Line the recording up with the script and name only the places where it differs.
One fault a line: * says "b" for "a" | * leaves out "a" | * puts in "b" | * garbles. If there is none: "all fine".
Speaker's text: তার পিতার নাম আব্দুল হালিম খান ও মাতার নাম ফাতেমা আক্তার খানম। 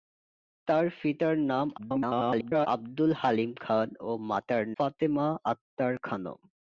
* garbles
* leaves out "নাম"